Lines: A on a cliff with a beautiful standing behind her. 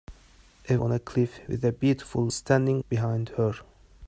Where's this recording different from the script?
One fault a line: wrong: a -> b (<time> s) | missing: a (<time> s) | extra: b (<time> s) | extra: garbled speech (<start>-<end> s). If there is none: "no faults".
no faults